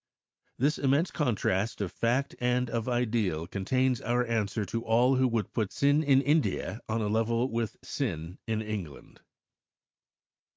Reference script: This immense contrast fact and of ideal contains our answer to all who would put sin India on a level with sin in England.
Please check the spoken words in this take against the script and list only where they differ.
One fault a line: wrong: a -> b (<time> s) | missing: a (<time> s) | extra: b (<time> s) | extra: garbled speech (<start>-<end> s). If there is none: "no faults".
extra: of (1.8 s)
extra: in (6.0 s)